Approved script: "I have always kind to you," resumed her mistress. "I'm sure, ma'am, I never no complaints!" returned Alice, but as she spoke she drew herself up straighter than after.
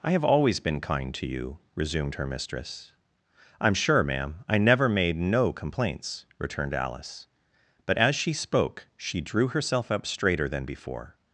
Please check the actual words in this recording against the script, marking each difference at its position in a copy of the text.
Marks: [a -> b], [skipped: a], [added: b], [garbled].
"I have always [added: been] kind to you," resumed her mistress. "I'm sure, ma'am, I never [added: made] no complaints!" returned Alice, but as she spoke she drew herself up straighter than [after. -> before]